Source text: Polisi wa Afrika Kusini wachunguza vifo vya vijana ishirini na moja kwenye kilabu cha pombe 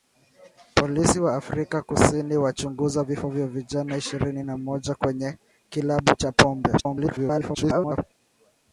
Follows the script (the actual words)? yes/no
no